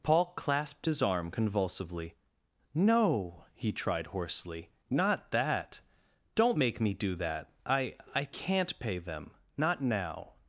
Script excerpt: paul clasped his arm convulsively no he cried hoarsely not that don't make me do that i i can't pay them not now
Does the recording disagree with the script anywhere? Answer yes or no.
yes